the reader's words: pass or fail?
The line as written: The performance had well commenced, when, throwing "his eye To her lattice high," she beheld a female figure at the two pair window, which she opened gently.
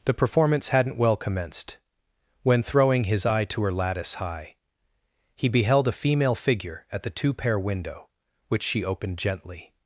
fail